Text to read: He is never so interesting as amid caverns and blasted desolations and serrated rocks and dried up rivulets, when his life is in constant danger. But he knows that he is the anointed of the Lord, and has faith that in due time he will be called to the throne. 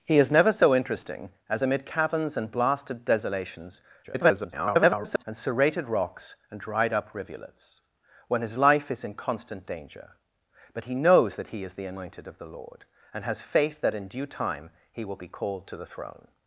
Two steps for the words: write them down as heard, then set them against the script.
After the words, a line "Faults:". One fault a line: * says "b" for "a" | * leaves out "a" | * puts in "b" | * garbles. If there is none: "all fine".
He is never so interesting as amid caverns and blasted desolations [garbled] and serrated rocks and dried up rivulets, when his life is in constant danger. But he knows that he is the anointed of the Lord, and has faith that in due time he will be called to the throne.
Faults:
* garbles